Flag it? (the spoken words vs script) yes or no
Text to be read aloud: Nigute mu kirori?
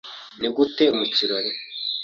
no